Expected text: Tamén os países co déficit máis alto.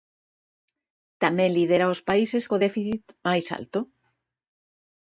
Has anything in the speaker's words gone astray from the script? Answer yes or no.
yes